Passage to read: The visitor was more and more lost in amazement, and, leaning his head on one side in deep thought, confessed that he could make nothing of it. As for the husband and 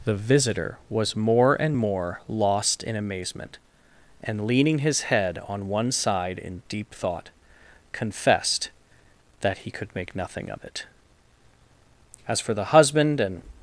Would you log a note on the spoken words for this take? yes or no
no